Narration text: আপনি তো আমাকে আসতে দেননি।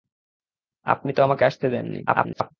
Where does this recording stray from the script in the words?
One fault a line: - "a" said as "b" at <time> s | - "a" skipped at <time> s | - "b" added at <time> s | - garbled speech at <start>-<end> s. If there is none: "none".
- garbled speech at 2.1-2.5 s